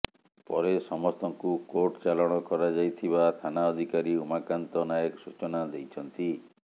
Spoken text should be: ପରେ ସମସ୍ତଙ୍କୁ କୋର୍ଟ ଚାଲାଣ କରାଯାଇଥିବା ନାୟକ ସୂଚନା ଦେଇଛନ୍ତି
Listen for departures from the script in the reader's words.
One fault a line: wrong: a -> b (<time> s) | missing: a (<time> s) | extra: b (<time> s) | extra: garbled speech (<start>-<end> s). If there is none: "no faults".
extra: ଥାନା ଅଧିକାରୀ ଉମାକାନ୍ତ (3.4 s)